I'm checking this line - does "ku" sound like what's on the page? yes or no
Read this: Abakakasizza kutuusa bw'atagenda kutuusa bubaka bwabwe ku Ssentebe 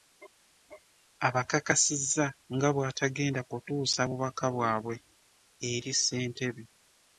no